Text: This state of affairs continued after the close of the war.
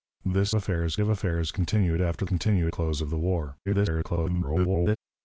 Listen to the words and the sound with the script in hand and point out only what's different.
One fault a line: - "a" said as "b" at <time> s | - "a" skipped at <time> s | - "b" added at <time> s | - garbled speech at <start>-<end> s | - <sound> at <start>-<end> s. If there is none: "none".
- "state" said as "affairs" at 0.5 s
- "the" said as "continued" at 2.2 s
- garbled speech at 3.7-5.0 s